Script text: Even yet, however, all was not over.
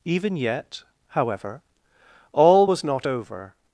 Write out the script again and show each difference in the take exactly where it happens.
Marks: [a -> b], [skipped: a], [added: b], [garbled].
Even yet, however, all was not over.